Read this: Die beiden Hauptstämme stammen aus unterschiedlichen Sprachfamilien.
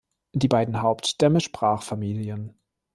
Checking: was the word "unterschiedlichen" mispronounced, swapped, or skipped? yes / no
yes